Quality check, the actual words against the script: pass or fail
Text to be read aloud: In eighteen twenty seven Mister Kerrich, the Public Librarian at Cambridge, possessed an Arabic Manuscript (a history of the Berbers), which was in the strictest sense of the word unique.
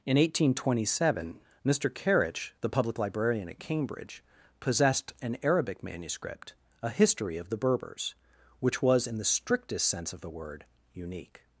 pass